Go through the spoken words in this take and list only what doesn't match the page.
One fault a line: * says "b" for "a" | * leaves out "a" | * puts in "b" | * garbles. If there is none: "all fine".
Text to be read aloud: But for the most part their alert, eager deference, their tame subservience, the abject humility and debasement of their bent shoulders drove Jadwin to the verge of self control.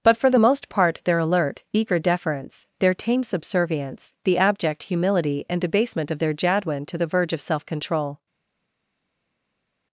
* leaves out "bent shoulders drove"